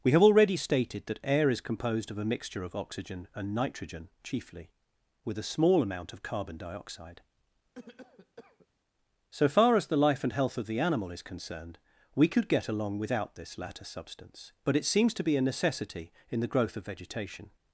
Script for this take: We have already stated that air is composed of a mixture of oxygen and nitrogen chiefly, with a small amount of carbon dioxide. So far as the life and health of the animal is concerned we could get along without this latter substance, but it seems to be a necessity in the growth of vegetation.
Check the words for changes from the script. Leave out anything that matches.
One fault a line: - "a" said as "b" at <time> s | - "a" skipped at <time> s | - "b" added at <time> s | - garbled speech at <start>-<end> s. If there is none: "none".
none